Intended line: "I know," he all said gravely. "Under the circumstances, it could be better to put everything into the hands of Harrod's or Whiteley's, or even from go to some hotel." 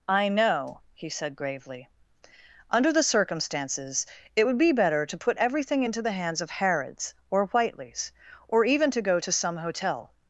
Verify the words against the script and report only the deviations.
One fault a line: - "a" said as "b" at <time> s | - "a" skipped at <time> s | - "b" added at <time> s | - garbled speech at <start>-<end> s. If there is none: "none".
- "all" skipped at 1.1 s
- "could" said as "would" at 4.4 s
- "from" said as "to" at 8.9 s